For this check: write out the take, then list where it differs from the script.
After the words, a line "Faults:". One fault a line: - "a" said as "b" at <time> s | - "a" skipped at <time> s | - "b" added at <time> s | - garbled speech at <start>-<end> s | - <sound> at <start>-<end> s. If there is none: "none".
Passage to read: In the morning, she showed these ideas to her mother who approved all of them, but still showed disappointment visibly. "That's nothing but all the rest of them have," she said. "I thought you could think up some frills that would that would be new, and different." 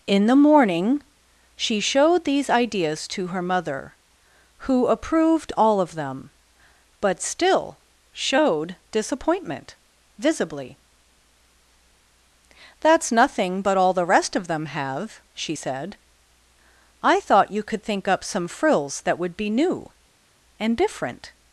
In the morning, she showed these ideas to her mother who approved all of them, but still showed disappointment visibly. "That's nothing but all the rest of them have," she said. "I thought you could think up some frills that would be new, and different."
Faults:
- "that would" skipped at 19.4 s